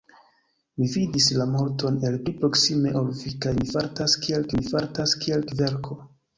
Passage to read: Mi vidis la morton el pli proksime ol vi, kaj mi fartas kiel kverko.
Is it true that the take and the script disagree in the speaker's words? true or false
true